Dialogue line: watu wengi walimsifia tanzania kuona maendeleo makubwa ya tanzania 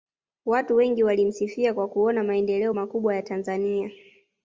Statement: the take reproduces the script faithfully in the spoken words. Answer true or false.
false